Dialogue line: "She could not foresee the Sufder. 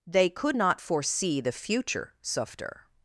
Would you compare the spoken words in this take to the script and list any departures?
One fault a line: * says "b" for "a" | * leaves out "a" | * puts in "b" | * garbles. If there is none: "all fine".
* says "They" for "She"
* puts in "future"